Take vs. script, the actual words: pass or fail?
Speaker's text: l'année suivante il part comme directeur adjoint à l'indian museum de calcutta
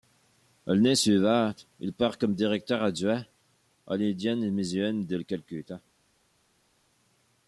pass